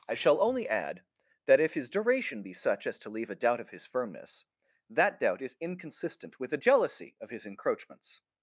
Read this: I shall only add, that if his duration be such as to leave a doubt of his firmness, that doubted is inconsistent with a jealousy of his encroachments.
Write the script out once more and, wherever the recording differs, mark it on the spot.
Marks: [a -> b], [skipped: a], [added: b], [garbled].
I shall only add, that if his duration be such as to leave a doubt of his firmness, that [doubted -> doubt] is inconsistent with a jealousy of his encroachments.